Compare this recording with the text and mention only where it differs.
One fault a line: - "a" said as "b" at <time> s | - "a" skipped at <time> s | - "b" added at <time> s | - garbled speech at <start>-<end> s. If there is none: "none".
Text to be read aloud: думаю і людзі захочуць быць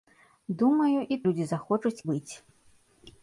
none